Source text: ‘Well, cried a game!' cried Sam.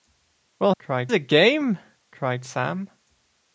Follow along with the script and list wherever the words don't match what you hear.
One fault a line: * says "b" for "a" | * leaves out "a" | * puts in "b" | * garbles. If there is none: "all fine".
all fine